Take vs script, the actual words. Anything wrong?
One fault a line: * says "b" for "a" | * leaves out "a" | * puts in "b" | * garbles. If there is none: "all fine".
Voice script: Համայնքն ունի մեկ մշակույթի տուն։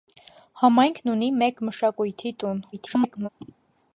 * garbles